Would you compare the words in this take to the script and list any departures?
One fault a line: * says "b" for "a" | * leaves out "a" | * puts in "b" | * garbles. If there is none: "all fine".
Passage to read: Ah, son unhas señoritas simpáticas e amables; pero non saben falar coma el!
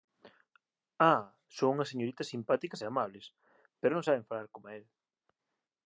all fine